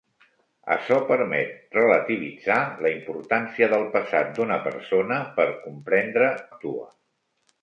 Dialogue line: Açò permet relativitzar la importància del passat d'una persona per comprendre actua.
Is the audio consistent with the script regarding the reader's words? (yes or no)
yes